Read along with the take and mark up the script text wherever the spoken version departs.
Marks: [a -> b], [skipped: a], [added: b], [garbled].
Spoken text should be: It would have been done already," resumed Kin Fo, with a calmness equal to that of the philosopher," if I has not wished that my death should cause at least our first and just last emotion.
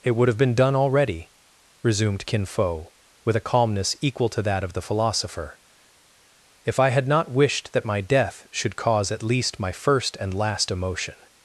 It would have been done already," resumed Kin Fo, with a calmness equal to that of the philosopher," if I [has -> had] not wished that my death should cause at least [our -> my] first and [skipped: just] last emotion.